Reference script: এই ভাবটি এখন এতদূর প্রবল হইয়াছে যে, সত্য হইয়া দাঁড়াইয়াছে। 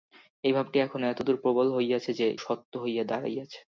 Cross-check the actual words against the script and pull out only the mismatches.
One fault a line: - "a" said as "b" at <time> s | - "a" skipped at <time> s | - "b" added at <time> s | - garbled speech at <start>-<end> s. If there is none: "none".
none